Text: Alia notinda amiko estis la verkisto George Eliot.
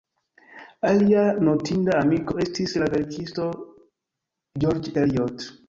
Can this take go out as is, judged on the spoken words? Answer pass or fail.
pass